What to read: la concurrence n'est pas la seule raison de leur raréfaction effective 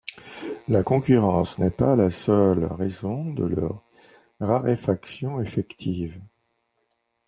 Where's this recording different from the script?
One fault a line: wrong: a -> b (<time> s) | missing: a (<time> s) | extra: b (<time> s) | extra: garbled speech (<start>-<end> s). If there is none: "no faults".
no faults